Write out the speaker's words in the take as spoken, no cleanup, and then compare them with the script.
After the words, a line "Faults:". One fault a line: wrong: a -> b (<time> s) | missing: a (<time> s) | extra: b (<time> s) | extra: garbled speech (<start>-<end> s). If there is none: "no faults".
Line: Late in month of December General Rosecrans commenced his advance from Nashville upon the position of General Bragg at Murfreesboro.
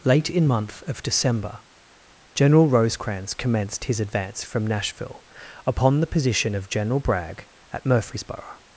Late in month of December General Rosecrans commenced his advance from Nashville upon the position of General Bragg at Murfreesboro.
Faults:
no faults